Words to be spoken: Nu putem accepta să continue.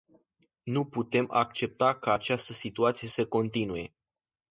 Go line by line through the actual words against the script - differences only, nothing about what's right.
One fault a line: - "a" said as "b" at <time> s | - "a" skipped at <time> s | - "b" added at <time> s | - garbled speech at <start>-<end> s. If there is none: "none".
- "ca această situație" added at 2.0 s